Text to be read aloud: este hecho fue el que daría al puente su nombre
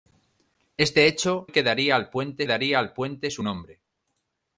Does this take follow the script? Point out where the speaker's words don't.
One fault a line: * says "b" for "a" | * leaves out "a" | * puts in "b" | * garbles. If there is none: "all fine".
* leaves out "fue"
* puts in "daría al puente"